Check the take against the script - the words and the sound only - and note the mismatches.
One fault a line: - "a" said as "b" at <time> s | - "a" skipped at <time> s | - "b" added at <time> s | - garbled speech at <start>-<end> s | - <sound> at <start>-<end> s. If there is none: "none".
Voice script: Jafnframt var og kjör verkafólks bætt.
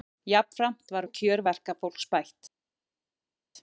none